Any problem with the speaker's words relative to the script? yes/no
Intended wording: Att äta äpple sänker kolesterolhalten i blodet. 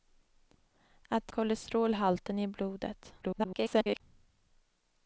yes